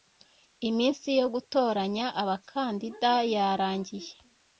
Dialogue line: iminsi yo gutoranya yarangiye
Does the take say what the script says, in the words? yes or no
no